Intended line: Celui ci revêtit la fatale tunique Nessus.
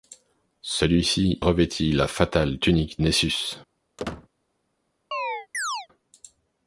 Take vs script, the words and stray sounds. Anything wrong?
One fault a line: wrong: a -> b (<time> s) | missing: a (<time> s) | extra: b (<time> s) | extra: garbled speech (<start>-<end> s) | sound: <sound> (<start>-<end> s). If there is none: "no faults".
sound: squeak (4.0-4.3 s)
sound: chirp (5.1-5.9 s)